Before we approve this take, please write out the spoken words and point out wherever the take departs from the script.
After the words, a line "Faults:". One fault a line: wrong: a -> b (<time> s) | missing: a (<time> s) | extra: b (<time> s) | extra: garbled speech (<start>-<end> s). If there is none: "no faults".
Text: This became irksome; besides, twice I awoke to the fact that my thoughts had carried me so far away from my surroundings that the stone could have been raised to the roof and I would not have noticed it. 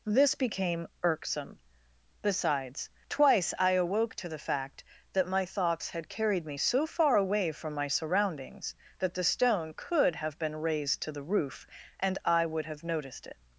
This became irksome; besides, twice I awoke to the fact that my thoughts had carried me so far away from my surroundings that the stone could have been raised to the roof and I would have noticed it.
Faults:
missing: not (12.6 s)